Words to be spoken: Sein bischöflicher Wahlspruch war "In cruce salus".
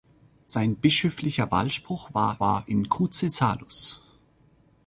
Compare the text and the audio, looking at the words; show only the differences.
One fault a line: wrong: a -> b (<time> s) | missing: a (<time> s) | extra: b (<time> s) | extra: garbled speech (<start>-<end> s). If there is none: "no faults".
extra: war (2.4 s)